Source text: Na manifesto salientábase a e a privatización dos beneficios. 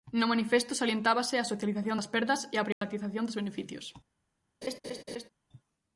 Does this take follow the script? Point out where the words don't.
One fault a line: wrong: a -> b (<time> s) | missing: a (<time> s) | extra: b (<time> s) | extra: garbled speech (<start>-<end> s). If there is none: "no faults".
wrong: Na -> No (0.1 s)
extra: socialización das perdas (1.4 s)